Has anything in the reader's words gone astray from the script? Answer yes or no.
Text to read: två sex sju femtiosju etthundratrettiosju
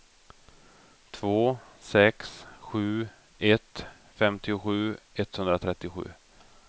yes